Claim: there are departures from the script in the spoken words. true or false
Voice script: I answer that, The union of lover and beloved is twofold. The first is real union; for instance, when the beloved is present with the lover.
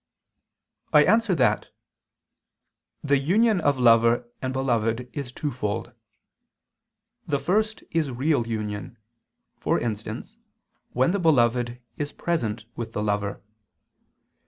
false